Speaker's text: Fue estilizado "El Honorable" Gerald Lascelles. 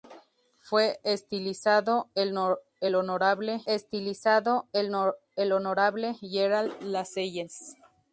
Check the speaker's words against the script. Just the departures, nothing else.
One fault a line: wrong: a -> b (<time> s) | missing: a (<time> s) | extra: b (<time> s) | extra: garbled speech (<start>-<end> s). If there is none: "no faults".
extra: estilizado El Honorable (3.6 s)